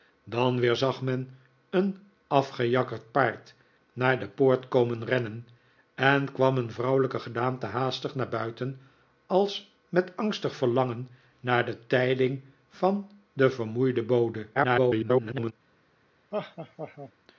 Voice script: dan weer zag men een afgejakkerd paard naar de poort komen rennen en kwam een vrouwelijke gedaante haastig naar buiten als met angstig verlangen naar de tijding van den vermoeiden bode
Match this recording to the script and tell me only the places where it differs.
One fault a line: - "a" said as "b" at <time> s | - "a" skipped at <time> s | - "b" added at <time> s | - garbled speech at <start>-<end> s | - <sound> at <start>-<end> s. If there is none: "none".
- garbled speech at 14.5-15.5 s
- laugh at 16.3-17.1 s